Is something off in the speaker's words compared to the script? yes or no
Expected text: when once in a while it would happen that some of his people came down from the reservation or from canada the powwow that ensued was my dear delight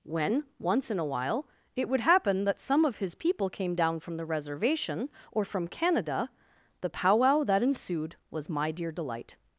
no